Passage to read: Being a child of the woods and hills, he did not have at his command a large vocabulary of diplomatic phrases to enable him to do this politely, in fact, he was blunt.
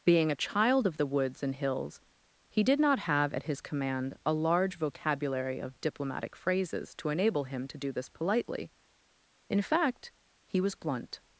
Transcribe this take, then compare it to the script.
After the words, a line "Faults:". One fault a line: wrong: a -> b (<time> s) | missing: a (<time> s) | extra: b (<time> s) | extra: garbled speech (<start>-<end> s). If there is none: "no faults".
Being a child of the woods and hills, he did not have at his command a large vocabulary of diplomatic phrases to enable him to do this politely, in fact, he was blunt.
Faults:
no faults